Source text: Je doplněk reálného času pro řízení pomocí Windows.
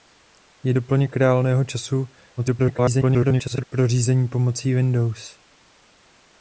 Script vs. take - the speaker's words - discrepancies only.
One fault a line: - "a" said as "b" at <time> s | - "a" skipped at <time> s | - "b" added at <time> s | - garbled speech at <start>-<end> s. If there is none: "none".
- garbled speech at 2.4-3.6 s